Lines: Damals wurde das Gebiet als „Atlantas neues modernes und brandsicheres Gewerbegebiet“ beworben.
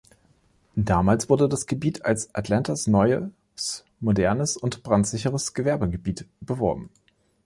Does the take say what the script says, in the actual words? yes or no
yes